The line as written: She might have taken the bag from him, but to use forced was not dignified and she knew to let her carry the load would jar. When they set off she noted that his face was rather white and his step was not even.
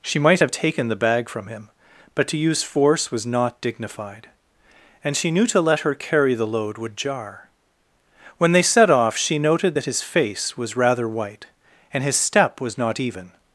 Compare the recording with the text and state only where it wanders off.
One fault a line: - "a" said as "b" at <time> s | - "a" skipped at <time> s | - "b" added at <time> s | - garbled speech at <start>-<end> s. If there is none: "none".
- "forced" said as "force" at 2.6 s